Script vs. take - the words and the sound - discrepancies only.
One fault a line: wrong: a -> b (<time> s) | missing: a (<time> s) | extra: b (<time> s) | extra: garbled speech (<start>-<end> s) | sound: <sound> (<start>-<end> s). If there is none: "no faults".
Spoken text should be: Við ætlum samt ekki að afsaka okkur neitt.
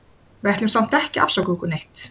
no faults